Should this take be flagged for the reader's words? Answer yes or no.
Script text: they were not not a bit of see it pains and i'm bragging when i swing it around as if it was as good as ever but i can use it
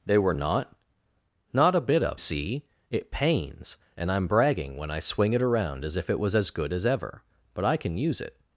no